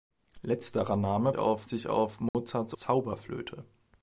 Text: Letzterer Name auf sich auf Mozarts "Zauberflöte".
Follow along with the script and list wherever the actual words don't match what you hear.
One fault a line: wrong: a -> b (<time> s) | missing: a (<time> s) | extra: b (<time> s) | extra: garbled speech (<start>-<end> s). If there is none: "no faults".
no faults